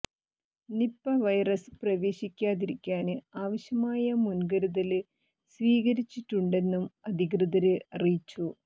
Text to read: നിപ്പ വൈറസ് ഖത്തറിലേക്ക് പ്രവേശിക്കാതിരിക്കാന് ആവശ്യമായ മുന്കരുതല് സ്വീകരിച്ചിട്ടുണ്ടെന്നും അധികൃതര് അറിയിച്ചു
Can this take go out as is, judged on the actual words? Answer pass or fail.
fail